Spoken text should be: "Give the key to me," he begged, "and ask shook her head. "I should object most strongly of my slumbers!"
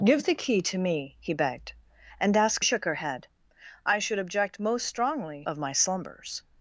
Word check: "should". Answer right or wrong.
right